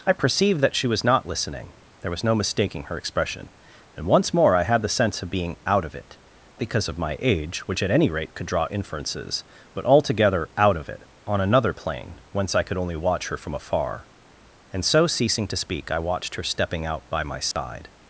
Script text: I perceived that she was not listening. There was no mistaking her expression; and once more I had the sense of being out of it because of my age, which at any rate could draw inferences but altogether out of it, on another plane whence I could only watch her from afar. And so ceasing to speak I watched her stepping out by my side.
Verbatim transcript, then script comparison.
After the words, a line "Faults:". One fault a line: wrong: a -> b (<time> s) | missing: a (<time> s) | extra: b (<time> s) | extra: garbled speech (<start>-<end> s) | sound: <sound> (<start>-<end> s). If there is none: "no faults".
I perceived that she was not listening. There was no mistaking her expression; and once more I had the sense of being out of it because of my age, which at any rate could draw inferences but altogether out of it, on another plane whence I could only watch her from afar. And so ceasing to speak I watched her stepping out by my side.
Faults:
sound: dropout (17.5-17.6 s)